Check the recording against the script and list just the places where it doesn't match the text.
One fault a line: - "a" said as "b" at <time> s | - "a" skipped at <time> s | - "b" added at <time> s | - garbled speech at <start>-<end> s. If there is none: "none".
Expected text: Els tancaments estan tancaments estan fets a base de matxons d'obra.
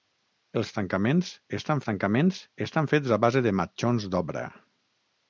none